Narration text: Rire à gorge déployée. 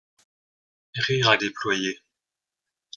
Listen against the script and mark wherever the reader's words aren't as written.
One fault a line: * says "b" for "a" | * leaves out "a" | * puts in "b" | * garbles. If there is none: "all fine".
* leaves out "gorge"